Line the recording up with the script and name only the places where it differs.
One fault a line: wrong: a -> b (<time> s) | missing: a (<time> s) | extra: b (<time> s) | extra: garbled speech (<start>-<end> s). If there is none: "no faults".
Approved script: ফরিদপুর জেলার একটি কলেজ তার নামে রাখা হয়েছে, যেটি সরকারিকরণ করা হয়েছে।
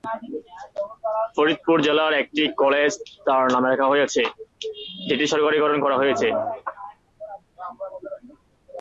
no faults